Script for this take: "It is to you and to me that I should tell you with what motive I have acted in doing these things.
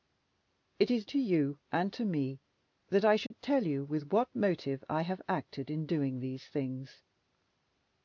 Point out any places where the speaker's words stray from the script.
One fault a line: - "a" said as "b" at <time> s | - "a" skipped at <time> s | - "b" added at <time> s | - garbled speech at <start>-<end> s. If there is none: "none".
none